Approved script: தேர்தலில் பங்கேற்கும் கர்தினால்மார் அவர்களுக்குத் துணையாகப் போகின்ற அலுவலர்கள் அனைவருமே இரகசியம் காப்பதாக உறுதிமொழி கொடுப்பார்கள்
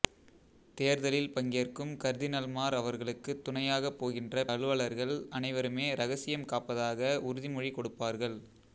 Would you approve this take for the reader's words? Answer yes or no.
yes